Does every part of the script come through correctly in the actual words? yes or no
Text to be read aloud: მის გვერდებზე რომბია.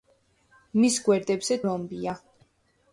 yes